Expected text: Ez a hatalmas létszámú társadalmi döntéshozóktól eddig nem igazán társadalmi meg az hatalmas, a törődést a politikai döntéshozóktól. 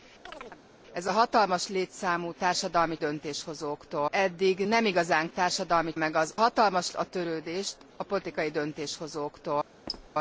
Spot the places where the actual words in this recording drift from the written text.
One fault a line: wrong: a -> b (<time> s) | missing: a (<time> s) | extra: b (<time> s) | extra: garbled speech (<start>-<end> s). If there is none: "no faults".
no faults